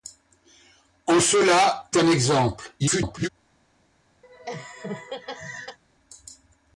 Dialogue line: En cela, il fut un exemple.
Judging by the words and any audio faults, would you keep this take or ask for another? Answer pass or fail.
fail